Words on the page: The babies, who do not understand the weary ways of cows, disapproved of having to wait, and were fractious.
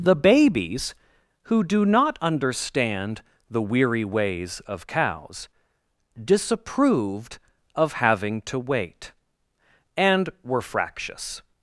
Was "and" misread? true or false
false